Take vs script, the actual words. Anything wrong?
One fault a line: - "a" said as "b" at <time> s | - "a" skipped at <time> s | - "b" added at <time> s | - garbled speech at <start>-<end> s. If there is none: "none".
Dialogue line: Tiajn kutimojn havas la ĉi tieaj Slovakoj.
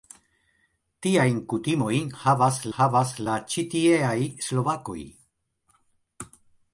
- "havas" added at 2.7 s